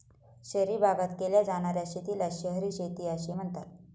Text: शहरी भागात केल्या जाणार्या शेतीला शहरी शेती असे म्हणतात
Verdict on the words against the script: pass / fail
pass